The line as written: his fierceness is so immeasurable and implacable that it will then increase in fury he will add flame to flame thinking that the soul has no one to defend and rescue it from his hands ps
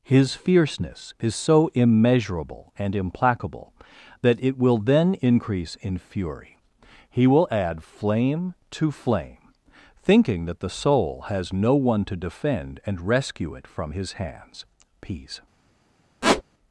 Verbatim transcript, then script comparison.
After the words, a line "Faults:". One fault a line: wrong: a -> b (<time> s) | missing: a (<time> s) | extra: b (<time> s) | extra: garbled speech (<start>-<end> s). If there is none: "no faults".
his fierceness is so immeasurable and implacable that it will then increase in fury he will add flame to flame thinking that the soul has no one to defend and rescue it from his hands peace
Faults:
wrong: ps -> peace (15.0 s)